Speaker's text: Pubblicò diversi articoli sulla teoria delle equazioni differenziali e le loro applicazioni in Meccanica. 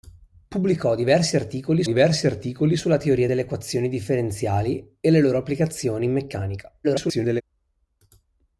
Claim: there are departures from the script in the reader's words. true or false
true